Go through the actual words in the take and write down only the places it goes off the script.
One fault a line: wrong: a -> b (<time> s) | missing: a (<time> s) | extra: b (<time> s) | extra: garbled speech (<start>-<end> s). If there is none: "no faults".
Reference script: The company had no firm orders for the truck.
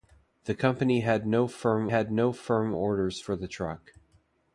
extra: had no firm (1.9 s)